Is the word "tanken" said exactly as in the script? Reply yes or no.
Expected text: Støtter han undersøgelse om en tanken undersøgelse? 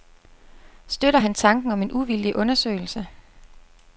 no